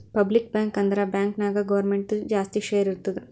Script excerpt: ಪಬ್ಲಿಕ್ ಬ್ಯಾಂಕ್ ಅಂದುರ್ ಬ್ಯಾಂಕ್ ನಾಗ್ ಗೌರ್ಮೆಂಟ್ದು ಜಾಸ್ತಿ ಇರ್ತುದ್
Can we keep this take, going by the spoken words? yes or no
no